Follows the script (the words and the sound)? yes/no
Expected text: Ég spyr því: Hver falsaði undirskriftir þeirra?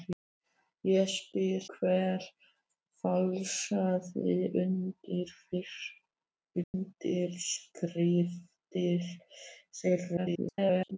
no